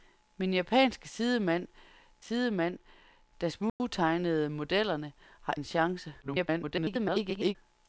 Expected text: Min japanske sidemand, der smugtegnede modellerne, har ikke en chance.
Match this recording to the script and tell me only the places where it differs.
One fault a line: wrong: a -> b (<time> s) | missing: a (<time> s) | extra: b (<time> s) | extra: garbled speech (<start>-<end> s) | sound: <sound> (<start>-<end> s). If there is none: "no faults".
extra: sidemand (2.2 s)
sound: dropout (3.7-3.8 s)
missing: ikke (5.5 s)
extra: garbled speech (6.2-7.6 s)